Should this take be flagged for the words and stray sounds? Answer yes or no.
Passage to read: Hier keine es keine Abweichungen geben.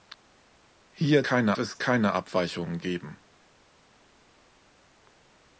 no